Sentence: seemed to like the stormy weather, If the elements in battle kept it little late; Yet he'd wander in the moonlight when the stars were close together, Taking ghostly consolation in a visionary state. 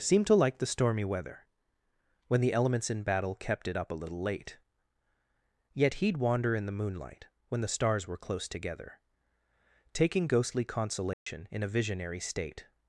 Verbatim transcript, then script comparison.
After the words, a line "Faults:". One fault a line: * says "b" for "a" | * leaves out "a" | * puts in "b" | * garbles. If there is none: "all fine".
seemed to like the stormy weather, When the elements in battle kept it up a little late; Yet he'd wander in the moonlight when the stars were close together, Taking ghostly consolation in a visionary state.
Faults:
* says "When" for "If"
* puts in "up a"